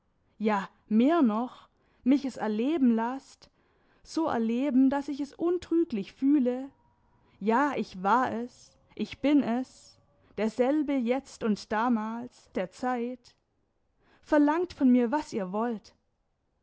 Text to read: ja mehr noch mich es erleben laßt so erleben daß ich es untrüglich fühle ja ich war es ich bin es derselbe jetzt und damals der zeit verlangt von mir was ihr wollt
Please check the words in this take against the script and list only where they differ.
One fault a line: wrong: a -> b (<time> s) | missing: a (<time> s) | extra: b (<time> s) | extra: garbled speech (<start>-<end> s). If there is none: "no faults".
no faults